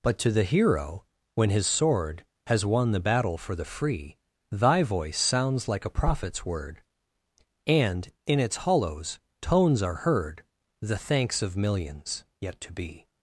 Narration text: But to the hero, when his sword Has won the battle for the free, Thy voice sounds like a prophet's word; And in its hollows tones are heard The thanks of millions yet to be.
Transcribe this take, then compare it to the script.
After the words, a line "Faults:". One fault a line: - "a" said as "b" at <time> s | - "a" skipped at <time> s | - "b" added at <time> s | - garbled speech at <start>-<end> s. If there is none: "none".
But to the hero, when his sword Has won the battle for the free, Thy voice sounds like a prophet's word; And in its hollows tones are heard The thanks of millions yet to be.
Faults:
none